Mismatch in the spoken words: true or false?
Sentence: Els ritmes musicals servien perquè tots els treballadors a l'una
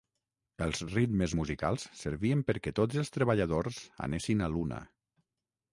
true